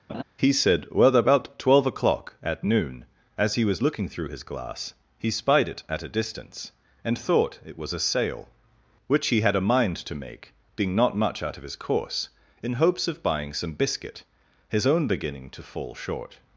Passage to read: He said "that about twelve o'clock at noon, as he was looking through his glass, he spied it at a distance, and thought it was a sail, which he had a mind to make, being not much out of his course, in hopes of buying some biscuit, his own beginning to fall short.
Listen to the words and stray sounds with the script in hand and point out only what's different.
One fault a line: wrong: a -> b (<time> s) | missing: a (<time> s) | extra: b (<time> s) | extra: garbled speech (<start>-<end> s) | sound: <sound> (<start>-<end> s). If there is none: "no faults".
sound: laugh (0.1-0.2 s)
wrong: that -> well (0.9 s)